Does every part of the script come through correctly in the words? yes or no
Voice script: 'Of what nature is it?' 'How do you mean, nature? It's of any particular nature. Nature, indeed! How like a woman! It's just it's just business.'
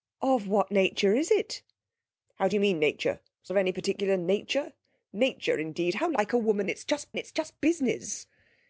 yes